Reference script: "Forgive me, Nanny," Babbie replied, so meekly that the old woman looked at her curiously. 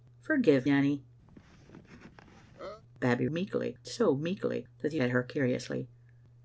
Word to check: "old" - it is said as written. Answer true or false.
false